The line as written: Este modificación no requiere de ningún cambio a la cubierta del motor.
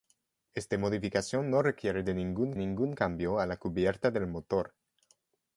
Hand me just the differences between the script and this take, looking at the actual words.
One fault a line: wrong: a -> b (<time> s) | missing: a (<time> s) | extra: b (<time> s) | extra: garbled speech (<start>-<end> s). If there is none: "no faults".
extra: ningún (2.6 s)